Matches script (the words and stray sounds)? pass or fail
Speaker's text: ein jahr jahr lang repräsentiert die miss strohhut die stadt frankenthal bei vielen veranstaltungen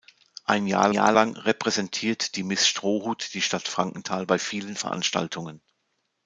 pass